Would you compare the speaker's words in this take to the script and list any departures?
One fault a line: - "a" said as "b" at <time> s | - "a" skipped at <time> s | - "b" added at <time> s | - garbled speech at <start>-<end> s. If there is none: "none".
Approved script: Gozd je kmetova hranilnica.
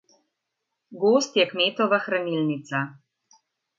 none